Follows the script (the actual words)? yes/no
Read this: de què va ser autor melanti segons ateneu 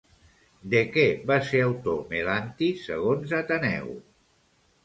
yes